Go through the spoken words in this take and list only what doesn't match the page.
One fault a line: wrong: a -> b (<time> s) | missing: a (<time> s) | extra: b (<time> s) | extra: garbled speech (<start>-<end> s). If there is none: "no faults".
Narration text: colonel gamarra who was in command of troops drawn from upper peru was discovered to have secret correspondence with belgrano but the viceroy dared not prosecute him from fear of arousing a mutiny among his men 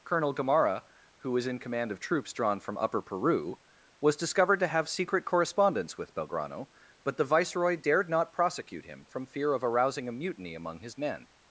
no faults